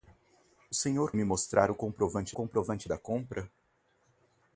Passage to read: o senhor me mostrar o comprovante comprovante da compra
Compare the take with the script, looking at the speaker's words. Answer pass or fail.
pass